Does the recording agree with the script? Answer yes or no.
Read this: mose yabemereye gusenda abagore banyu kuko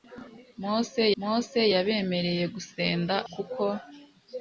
no